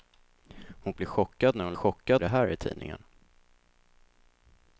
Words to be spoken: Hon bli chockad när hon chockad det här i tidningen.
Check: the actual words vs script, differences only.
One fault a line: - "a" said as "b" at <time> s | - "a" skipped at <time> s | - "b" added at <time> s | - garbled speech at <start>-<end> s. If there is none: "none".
none